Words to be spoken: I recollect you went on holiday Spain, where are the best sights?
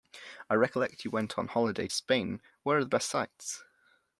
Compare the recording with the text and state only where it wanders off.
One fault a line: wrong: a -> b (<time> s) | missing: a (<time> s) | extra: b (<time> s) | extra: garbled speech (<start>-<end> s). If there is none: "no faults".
no faults